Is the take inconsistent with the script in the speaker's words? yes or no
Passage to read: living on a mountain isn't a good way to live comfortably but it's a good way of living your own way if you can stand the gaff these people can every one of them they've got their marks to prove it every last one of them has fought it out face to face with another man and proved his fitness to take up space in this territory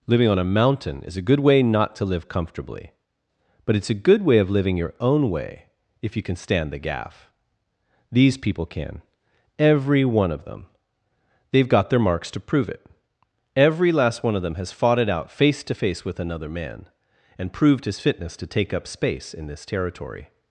yes